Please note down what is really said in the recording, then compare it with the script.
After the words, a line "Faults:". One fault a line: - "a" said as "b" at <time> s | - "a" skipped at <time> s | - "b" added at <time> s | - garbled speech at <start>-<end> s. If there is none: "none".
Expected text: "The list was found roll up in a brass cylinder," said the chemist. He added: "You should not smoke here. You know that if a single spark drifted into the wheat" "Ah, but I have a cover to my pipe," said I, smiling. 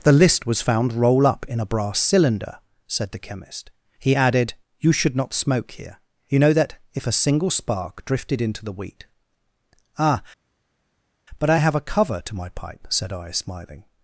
"The list was found roll up in a brass cylinder," said the chemist. He added: "You should not smoke here. You know that if a single spark drifted into the wheat" "Ah, but I have a cover to my pipe," said I, smiling.
Faults:
none